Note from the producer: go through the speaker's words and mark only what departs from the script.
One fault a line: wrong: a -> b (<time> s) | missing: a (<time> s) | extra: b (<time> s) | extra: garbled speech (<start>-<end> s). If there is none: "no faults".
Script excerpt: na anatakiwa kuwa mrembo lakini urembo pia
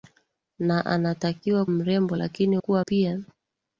missing: kuwa (1.6 s)
wrong: urembo -> kuwa (2.6 s)